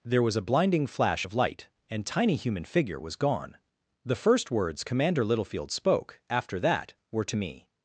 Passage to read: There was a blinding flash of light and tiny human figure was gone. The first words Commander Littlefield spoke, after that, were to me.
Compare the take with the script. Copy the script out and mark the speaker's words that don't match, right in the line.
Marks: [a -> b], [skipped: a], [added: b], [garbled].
There was a blinding flash of light and tiny human figure was gone. The first words Commander Littlefield spoke, after that, were to me.